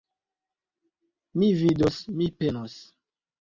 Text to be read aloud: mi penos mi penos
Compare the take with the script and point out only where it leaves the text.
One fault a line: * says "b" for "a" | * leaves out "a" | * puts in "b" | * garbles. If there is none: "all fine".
* says "vidos" for "penos"